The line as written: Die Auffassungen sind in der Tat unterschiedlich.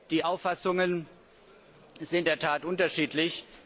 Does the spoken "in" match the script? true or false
false